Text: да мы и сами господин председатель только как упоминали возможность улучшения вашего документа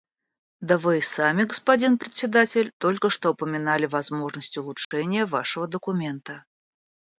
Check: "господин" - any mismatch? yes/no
no